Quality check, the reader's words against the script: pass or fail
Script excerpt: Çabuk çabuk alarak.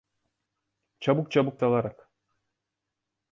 pass